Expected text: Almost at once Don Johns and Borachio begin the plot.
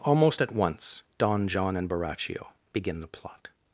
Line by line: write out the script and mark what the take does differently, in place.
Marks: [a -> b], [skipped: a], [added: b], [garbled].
Almost at once Don [Johns -> John] and Borachio begin the plot.